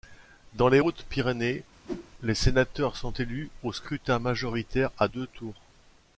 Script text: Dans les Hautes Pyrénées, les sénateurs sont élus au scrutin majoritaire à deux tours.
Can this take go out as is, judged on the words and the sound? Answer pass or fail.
fail